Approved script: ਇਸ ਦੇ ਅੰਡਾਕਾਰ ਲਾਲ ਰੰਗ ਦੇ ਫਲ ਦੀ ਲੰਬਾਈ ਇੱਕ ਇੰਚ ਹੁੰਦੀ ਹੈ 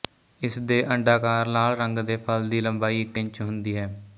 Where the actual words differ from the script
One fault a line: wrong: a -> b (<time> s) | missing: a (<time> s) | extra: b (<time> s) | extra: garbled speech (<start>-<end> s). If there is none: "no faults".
no faults